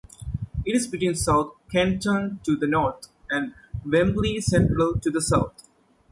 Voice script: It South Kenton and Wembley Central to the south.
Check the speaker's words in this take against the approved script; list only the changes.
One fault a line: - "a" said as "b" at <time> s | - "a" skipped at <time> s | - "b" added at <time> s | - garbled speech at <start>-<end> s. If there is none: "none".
- "is between" added at 0.8 s
- "to the north" added at 2.4 s